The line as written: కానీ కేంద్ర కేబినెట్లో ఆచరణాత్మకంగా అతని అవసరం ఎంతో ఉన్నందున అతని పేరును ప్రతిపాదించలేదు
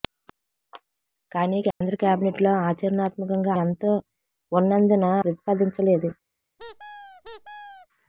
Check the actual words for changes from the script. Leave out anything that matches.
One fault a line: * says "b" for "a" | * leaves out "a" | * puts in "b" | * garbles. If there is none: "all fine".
* leaves out "అతని అవసరం"
* leaves out "అతని పేరును"